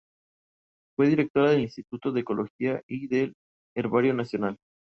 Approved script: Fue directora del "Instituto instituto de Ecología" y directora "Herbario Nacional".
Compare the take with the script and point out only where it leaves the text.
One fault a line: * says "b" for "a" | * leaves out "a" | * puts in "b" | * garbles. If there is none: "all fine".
* leaves out "instituto"
* says "del" for "directora"